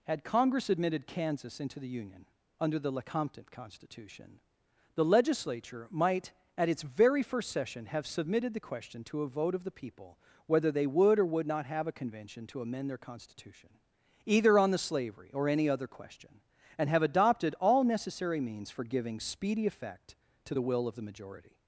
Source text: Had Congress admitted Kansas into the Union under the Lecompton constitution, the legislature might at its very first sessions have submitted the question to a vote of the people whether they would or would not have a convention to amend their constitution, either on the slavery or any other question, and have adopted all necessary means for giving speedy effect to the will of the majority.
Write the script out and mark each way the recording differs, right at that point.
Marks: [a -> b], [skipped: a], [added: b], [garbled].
Had Congress admitted Kansas into the Union under the Lecompton constitution, the legislature might at its very first [sessions -> session] have submitted the question to a vote of the people whether they would or would not have a convention to amend their constitution, either on the slavery or any other question, and have adopted all necessary means for giving speedy effect to the will of the majority.